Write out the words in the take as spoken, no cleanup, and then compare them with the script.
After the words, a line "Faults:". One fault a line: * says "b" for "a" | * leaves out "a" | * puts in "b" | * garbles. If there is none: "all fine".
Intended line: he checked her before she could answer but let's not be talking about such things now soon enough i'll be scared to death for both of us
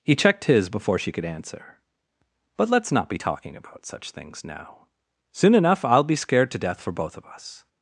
he checked his before she could answer but let's not be talking about such things now soon enough i'll be scared to death for both of us
Faults:
* says "his" for "her"